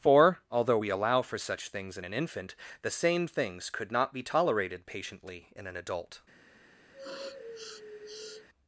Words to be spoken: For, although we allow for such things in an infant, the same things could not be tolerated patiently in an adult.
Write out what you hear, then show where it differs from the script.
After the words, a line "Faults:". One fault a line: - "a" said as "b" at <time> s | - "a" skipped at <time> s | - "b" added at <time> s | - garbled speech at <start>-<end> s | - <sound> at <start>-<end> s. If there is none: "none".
For, although we allow for such things in an infant, the same things could not be tolerated patiently in an adult.
Faults:
- sniff at 6.9-8.5 s